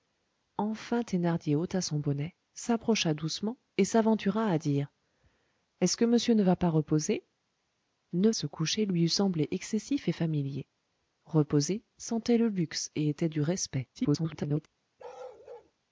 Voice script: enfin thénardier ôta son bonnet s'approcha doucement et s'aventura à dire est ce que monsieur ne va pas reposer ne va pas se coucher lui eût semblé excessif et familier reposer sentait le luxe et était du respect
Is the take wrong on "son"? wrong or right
right